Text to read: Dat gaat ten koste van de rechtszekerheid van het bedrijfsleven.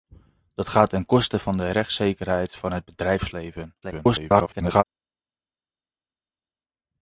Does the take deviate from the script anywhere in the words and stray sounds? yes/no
yes